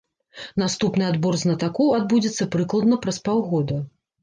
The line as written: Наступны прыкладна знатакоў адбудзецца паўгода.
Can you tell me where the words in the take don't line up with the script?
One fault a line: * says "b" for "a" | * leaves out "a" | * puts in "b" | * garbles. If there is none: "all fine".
* says "адбор" for "прыкладна"
* puts in "прыкладна праз"